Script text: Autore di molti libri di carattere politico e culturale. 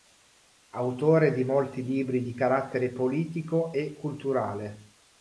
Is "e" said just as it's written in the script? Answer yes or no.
yes